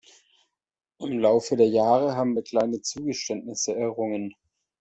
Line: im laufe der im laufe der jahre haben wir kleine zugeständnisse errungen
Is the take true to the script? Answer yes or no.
no